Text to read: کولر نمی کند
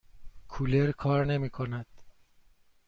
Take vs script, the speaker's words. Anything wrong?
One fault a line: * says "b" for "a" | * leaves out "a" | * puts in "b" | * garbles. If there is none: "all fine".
* puts in "کار"